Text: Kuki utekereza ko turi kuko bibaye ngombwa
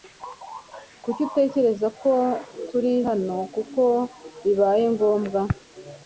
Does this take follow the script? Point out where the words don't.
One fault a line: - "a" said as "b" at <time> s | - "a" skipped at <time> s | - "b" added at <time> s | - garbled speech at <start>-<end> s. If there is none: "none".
- "hano" added at 3.1 s